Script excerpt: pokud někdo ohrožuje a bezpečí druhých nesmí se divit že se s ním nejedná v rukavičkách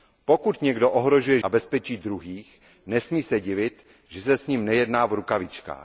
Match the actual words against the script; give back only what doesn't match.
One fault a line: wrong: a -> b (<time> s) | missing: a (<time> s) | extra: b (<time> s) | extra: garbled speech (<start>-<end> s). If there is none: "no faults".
no faults